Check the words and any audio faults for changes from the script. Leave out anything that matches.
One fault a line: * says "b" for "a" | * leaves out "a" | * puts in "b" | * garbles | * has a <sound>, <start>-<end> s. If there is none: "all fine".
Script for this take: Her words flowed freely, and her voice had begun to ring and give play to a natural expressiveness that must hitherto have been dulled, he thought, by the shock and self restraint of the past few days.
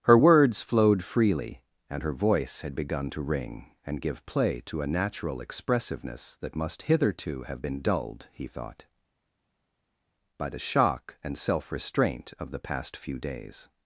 all fine